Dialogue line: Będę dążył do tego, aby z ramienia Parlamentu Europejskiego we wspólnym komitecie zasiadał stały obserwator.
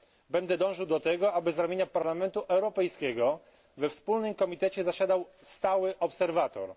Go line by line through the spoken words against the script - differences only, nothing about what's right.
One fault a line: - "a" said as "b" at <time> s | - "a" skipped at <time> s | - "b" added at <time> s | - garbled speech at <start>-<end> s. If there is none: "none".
none